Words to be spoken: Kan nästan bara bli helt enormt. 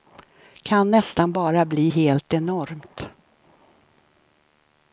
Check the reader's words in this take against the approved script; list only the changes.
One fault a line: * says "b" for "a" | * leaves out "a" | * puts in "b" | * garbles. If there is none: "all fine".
all fine